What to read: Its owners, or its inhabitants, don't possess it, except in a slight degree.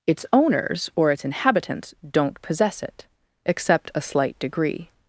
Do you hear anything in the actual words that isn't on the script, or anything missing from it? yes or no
yes